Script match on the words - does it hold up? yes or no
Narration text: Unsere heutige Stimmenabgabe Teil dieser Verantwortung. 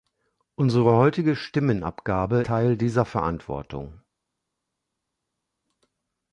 yes